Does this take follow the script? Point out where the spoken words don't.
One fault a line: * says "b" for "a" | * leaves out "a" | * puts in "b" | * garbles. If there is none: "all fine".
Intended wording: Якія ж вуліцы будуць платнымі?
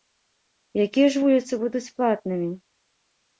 all fine